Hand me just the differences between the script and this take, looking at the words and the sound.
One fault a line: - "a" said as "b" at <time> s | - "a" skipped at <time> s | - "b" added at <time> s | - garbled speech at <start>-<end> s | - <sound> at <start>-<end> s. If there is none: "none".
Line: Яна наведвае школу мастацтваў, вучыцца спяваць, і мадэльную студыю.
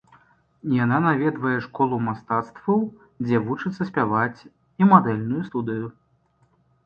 - "дзе" added at 3.2 s